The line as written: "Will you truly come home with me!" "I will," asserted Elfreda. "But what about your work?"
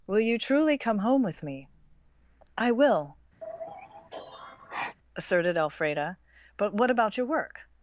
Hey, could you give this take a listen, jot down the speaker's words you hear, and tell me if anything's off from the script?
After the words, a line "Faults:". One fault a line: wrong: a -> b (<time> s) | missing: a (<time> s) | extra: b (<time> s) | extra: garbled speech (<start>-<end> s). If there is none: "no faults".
"Will you truly come home with me!" "I will," asserted Elfreda. "But what about your work?"
Faults:
no faults